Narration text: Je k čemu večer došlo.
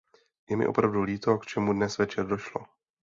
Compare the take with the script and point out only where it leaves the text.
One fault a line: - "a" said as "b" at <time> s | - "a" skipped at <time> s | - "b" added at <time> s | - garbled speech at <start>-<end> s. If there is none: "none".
- "mi opravdu líto" added at 0.6 s
- "dnes" added at 1.7 s